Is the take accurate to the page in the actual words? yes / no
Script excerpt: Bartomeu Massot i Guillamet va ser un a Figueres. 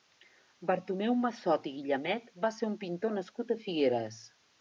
no